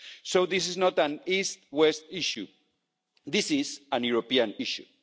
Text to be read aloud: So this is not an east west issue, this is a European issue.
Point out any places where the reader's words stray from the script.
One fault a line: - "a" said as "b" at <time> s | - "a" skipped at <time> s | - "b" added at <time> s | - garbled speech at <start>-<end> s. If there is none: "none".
none